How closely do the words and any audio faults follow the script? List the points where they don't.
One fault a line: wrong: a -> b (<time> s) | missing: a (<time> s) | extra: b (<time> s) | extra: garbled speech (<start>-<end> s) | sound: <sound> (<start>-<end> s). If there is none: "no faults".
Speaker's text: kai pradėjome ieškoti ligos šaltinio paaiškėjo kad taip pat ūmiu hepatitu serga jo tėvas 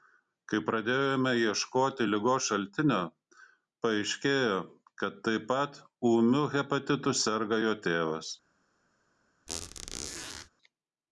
sound: squeak (9.5-10.5 s)